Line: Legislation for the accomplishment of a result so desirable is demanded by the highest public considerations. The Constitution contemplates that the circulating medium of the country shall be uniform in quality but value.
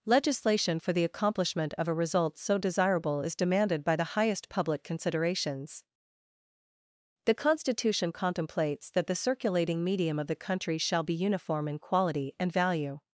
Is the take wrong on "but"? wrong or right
wrong